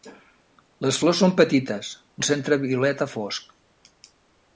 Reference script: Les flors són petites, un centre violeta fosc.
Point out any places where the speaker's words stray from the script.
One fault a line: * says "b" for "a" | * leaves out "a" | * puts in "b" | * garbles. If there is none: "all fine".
all fine